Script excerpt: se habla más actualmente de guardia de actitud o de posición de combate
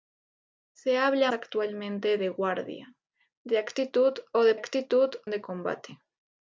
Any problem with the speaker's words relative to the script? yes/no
yes